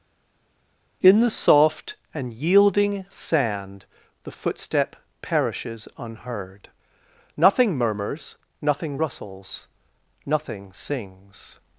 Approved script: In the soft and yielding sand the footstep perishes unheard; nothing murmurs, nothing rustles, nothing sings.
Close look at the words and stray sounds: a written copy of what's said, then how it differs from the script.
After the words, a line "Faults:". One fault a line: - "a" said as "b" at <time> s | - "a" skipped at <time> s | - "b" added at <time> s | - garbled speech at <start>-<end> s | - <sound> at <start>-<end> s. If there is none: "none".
In the soft and yielding sand the footstep perishes unheard; nothing murmurs, nothing rustles, nothing sings.
Faults:
none